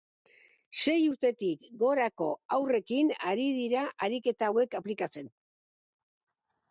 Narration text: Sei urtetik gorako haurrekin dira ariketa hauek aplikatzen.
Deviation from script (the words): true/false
true